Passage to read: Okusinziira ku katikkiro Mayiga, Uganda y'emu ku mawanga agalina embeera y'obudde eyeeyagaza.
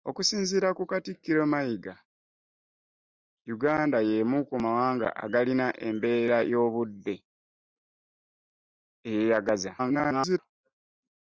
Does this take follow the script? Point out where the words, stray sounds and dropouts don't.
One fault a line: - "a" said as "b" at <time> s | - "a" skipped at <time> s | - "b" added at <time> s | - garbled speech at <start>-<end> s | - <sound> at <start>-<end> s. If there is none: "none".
- garbled speech at 9.8-10.4 s